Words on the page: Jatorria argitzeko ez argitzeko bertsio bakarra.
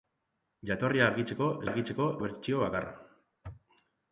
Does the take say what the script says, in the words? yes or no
yes